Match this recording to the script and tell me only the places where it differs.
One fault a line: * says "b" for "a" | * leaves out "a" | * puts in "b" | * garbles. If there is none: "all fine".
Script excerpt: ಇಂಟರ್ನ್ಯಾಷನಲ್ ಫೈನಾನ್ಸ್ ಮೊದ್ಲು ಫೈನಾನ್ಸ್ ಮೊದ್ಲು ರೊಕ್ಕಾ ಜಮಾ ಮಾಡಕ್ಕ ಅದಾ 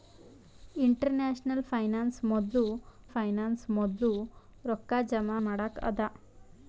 all fine